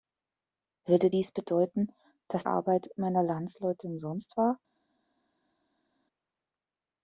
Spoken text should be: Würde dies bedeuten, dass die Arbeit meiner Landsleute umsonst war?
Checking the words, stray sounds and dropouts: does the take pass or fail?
fail